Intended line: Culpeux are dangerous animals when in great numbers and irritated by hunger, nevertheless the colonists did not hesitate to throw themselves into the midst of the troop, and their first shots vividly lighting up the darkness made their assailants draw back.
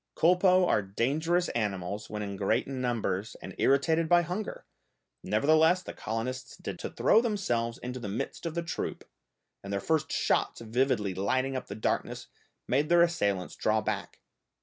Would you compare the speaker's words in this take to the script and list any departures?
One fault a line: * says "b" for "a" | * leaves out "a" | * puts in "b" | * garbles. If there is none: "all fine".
* leaves out "not hesitate"